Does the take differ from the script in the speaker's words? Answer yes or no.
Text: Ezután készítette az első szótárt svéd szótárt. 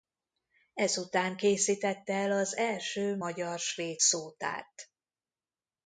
yes